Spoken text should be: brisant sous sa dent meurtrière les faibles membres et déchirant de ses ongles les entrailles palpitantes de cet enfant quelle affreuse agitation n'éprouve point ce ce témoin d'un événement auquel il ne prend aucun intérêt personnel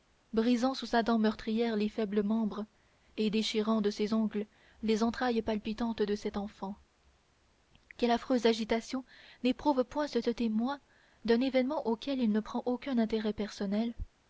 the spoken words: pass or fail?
pass